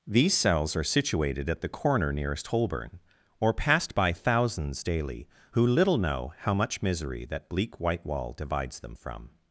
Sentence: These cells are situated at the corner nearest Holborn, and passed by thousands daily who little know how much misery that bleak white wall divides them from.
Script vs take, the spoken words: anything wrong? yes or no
yes